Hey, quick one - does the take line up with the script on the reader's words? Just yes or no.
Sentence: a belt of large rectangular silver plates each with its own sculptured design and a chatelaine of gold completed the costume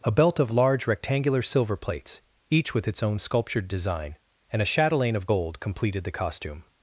yes